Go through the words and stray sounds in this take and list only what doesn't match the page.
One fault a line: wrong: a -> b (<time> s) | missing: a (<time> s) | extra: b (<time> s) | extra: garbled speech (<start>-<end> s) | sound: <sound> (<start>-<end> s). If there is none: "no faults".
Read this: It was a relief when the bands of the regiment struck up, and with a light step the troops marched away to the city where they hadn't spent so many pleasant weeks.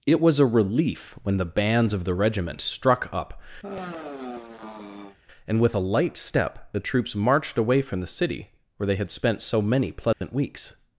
sound: sigh (3.6-5.2 s)
wrong: to -> from (7.8 s)
wrong: hadn't -> had (9.0 s)
sound: dropout (10.1-10.2 s)